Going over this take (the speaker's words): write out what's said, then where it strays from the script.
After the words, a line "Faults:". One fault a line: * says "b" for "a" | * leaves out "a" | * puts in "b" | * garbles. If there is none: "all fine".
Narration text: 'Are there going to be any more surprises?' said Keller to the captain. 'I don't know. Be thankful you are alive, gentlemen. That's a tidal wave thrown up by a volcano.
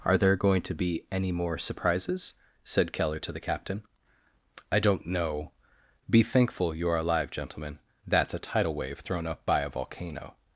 'Are there going to be any more surprises?' said Keller to the captain. 'I don't know. Be thankful you are alive, gentlemen. That's a tidal wave thrown up by a volcano.
Faults:
all fine